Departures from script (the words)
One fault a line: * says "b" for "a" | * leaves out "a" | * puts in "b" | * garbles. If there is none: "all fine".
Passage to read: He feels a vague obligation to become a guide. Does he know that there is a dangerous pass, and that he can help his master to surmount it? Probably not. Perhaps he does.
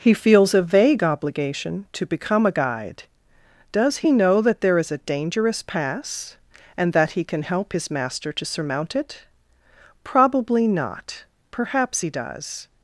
all fine